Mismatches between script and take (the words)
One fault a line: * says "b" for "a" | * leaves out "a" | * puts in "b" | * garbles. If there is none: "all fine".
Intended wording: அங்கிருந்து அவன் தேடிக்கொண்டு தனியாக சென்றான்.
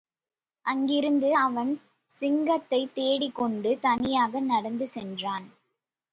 * puts in "சிங்கத்தைத்"
* puts in "நடந்து"